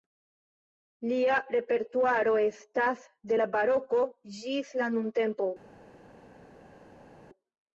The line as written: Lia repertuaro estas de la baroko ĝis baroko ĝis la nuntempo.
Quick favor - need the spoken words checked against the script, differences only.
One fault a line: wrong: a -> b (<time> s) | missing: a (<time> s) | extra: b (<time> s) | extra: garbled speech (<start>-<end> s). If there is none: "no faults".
missing: baroko ĝis (4.7 s)